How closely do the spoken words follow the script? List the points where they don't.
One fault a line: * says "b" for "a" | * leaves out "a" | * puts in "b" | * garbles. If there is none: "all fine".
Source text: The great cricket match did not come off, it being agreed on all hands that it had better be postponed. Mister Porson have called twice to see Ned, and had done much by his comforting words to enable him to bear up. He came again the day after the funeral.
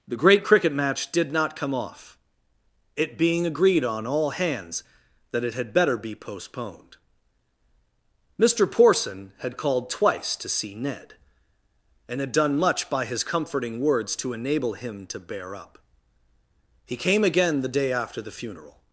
* says "had" for "have"